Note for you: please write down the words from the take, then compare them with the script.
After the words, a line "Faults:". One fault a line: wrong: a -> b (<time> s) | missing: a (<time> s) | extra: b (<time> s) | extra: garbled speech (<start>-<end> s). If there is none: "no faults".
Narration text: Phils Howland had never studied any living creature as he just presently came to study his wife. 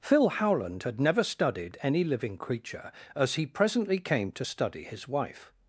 Phil Howland had never studied any living creature as he presently came to study his wife.
Faults:
wrong: Phils -> Phil (0.0 s)
missing: just (3.5 s)